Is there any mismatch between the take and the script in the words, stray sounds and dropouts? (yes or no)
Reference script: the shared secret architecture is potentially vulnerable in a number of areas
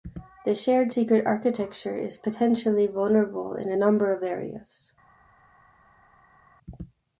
no